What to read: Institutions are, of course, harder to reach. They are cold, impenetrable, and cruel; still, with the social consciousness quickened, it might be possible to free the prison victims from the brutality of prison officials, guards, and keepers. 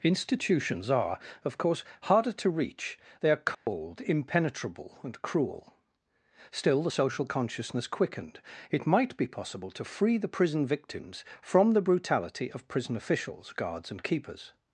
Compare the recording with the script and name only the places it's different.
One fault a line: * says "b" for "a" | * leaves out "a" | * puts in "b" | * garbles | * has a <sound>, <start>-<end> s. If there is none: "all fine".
* has a dropout, 3.5-3.7 s
* leaves out "with"